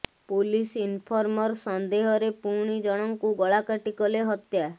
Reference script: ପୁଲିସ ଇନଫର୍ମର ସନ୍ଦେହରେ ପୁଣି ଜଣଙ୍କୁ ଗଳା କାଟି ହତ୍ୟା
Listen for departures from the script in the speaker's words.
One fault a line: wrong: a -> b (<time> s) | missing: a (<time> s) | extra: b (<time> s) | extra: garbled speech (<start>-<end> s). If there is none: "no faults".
extra: କଲେ (4.0 s)